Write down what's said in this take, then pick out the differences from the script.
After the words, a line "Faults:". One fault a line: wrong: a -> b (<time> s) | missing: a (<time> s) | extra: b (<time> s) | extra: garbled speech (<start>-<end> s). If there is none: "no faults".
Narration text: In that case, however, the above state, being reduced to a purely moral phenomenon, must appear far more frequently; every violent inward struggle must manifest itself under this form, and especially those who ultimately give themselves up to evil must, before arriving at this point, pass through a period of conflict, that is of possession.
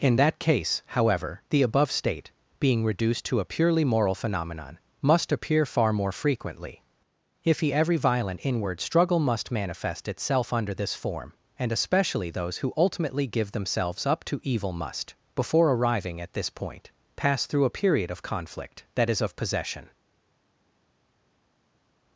In that case, however, the above state, being reduced to a purely moral phenomenon, must appear far more frequently; if he every violent inward struggle must manifest itself under this form, and especially those who ultimately give themselves up to evil must, before arriving at this point, pass through a period of conflict, that is of possession.
Faults:
extra: if he (7.4 s)